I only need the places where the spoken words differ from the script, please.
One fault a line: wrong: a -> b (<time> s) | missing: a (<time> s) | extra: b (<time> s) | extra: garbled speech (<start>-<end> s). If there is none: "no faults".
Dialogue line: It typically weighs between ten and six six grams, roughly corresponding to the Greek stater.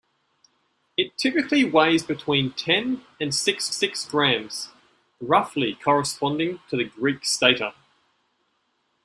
no faults